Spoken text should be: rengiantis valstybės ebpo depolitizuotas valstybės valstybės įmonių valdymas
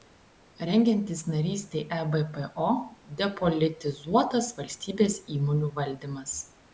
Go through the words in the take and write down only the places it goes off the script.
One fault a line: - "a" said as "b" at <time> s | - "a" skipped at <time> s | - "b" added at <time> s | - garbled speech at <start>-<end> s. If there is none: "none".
- "valstybės" said as "narystei" at 1.3 s
- "valstybės" skipped at 5.2 s